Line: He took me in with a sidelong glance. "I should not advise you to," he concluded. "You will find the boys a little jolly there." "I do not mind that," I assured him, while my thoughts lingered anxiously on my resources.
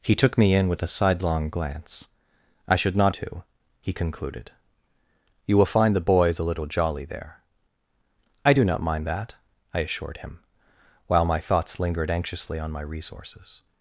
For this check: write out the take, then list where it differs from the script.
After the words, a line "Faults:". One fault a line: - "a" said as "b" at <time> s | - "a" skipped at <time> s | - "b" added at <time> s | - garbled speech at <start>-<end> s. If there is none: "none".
He took me in with a sidelong glance. "I should not to," he concluded. "You will find the boys a little jolly there." "I do not mind that," I assured him, while my thoughts lingered anxiously on my resources.
Faults:
- "advise you" skipped at 3.1 s